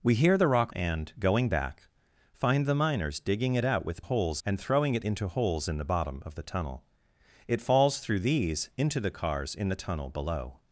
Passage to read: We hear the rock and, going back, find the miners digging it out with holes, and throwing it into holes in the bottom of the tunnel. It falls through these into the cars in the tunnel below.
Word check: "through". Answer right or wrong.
right